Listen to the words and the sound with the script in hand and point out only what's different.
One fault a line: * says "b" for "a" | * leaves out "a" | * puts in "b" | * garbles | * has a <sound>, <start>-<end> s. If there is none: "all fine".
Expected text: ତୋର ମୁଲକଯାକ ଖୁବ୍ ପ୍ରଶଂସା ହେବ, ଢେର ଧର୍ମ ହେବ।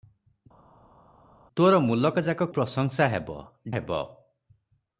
* leaves out "ଖୁବ୍"
* leaves out "ଢେର ଧର୍ମ"